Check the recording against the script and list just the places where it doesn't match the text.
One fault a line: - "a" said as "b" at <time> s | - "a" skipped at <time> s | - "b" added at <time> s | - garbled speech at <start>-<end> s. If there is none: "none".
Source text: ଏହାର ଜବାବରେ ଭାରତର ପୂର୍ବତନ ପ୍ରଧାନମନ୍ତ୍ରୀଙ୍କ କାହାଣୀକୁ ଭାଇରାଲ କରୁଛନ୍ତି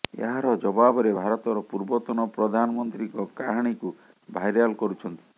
none